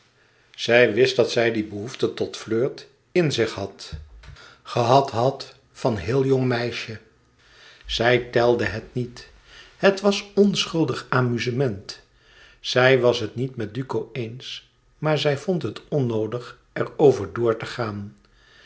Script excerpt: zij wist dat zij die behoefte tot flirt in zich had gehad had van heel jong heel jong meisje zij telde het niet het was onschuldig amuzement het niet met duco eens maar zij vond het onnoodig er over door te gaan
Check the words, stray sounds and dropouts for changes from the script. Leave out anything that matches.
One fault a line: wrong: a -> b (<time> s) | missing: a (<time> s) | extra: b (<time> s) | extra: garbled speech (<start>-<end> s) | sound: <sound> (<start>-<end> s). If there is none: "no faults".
missing: heel jong (6.5 s)
extra: zij was (12.6 s)